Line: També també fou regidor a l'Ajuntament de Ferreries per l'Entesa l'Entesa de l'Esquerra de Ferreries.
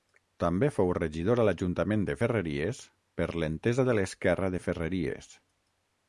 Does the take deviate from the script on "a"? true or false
false